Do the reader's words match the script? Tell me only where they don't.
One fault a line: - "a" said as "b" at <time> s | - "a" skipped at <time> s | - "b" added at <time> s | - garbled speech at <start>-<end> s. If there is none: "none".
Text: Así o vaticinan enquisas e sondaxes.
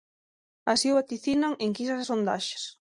none